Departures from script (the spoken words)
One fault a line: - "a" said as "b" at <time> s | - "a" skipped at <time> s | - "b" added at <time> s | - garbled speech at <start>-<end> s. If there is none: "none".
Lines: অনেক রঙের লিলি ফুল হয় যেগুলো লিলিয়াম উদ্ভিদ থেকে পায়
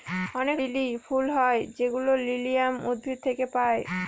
- "রঙের" skipped at 0.6 s